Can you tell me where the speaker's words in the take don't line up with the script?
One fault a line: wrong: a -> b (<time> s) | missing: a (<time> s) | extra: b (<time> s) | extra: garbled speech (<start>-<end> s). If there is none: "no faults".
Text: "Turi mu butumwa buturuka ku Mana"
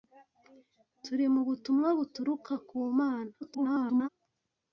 extra: garbled speech (3.4-4.1 s)